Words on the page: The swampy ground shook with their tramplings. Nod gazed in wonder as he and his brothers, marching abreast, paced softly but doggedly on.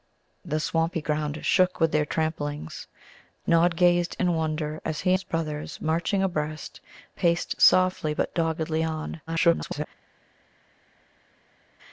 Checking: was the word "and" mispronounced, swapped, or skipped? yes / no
yes